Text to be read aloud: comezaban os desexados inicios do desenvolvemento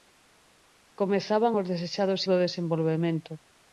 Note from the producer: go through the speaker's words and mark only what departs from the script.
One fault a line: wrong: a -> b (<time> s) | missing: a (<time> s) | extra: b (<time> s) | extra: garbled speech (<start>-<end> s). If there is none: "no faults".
missing: inicios (2.2 s)